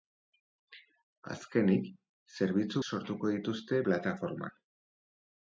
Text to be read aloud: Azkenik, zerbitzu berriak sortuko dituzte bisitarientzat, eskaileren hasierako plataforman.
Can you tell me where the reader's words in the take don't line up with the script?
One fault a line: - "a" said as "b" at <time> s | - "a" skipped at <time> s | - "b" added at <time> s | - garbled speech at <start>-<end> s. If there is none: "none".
- "berriak" skipped at 2.8 s
- "bisitarientzat eskaileren hasierako" skipped at 3.8 s